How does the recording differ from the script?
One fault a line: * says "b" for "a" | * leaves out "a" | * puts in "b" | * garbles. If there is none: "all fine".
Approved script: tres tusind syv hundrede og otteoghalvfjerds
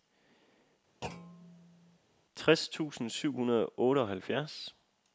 all fine